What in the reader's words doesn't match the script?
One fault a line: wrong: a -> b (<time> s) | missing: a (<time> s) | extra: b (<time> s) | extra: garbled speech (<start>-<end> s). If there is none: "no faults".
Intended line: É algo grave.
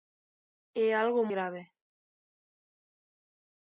no faults